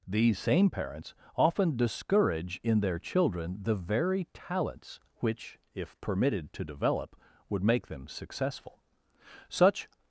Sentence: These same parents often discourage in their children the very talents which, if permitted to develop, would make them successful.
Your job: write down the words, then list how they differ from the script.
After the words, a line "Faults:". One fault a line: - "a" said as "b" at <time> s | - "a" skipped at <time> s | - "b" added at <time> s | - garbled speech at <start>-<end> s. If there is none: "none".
These same parents often discourage in their children the very talents which, if permitted to develop, would make them successful. Such
Faults:
- "Such" added at 9.5 s